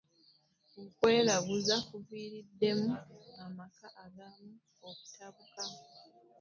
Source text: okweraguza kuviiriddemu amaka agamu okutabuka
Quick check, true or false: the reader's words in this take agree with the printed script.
true